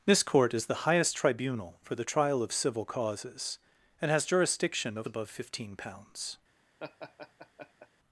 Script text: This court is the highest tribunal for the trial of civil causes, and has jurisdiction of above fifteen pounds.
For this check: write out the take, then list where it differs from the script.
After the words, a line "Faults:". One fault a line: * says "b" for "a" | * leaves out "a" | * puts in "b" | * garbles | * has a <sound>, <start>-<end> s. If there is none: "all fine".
This court is the highest tribunal for the trial of civil causes, and has jurisdiction of above fifteen pounds.
Faults:
* has a laugh, 6.8-7.9 s